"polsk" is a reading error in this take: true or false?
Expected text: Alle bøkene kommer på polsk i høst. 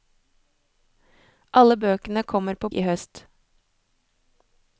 true